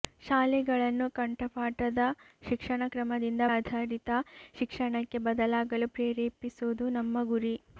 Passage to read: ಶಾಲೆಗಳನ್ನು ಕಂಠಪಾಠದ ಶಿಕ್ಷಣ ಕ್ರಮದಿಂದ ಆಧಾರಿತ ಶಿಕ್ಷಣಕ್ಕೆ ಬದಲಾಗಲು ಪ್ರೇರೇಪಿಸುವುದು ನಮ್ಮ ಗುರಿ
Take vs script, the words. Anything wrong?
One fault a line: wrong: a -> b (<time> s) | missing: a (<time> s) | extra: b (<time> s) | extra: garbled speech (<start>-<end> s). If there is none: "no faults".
no faults